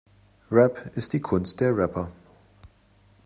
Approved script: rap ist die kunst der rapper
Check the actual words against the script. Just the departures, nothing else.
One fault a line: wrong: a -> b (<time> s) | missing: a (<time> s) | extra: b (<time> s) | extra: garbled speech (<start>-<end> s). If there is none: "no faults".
no faults